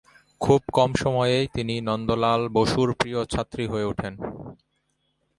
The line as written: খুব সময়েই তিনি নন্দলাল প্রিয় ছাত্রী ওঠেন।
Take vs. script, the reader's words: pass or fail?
fail